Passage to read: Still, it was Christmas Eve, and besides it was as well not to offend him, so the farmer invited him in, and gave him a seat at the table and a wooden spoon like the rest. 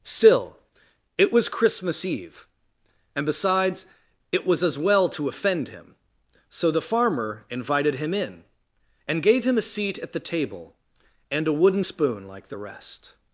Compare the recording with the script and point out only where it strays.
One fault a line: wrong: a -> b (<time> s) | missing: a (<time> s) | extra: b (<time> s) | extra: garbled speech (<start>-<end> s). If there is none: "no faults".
missing: not (5.1 s)